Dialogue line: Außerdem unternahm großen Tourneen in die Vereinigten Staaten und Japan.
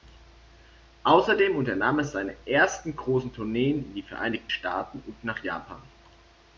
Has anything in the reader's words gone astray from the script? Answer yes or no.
yes